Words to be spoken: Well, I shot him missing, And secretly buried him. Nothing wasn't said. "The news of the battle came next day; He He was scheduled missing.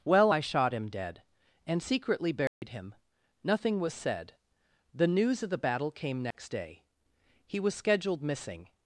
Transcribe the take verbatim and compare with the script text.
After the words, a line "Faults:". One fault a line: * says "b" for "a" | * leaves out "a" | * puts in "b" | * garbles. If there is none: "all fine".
Well, I shot him dead, And secretly buried him. Nothing was said. "The news of the battle came next day; He was scheduled missing.
Faults:
* says "dead" for "missing"
* says "was" for "wasn't"
* leaves out "He"